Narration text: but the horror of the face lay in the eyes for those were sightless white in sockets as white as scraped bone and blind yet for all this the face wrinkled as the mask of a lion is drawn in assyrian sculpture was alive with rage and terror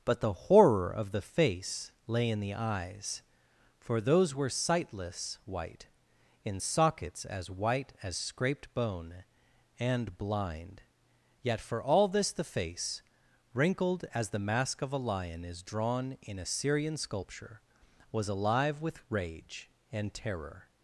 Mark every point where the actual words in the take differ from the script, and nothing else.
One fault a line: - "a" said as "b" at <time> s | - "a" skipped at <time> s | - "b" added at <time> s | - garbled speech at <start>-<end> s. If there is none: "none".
none